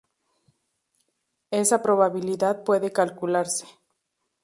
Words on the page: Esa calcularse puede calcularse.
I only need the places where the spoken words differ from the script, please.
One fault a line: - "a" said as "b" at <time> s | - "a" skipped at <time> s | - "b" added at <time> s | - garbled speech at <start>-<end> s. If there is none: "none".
- "calcularse" said as "probabilidad" at 1.8 s